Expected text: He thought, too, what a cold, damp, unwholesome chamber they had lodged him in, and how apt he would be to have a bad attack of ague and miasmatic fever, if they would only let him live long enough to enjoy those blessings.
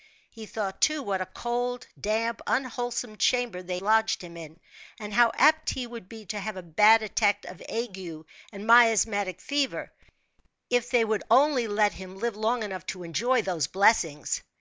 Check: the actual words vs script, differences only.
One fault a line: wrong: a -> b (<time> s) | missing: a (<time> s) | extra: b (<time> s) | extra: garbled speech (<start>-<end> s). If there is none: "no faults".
missing: had (3.8 s)